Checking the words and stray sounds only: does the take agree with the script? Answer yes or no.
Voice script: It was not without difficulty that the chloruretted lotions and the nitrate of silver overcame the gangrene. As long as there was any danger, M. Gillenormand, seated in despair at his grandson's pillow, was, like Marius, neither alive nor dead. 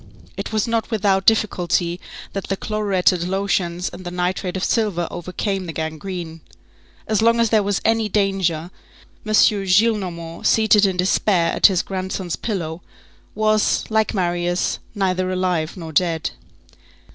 yes